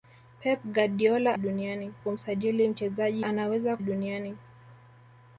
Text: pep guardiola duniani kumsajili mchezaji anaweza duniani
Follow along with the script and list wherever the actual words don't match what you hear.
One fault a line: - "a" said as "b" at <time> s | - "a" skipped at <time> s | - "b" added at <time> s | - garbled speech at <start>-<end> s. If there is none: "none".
none